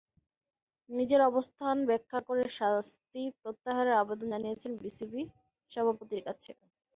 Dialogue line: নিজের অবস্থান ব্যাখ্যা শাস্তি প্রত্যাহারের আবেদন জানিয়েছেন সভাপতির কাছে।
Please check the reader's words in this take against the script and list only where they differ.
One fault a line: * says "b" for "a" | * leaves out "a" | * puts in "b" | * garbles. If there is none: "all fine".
* puts in "করে"
* puts in "বিসিবি"